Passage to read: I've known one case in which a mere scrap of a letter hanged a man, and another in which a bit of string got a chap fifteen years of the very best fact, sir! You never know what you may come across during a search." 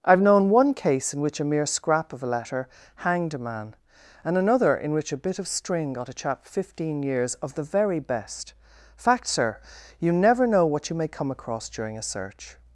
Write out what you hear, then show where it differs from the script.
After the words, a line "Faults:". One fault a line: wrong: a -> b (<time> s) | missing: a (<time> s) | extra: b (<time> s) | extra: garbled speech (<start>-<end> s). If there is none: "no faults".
I've known one case in which a mere scrap of a letter hanged a man, and another in which a bit of string got a chap fifteen years of the very best fact, sir! You never know what you may come across during a search."
Faults:
no faults